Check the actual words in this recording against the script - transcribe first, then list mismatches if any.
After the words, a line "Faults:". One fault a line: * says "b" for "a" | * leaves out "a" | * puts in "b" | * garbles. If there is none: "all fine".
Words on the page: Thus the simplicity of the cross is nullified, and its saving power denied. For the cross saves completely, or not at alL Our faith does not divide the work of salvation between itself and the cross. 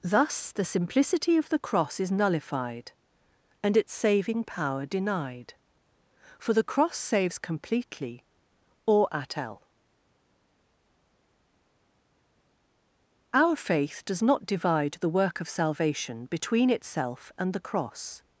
Thus the simplicity of the cross is nullified, and its saving power denied. For the cross saves completely, or at alL Our faith does not divide the work of salvation between itself and the cross.
Faults:
* leaves out "not"